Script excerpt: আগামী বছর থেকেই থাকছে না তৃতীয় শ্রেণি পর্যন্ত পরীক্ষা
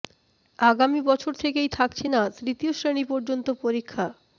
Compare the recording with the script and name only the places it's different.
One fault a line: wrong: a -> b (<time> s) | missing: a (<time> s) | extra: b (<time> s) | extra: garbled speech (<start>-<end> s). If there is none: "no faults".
no faults